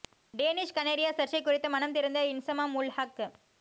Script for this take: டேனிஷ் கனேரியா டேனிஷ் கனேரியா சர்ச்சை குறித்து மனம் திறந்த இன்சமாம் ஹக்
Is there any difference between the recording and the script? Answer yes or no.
yes